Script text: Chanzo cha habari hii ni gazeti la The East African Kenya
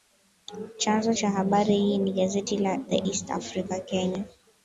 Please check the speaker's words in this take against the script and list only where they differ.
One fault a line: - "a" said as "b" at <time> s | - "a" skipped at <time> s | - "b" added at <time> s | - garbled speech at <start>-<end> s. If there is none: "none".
none